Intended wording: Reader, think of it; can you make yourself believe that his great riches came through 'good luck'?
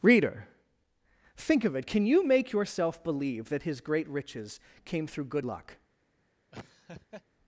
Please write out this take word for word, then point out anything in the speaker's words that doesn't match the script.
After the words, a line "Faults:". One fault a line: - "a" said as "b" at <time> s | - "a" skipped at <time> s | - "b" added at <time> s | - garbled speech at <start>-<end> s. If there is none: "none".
Reader, think of it; can you make yourself believe that his great riches came through 'good luck'?
Faults:
none